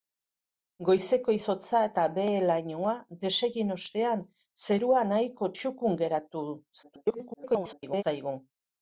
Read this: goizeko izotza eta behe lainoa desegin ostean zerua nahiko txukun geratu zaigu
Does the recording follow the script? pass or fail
fail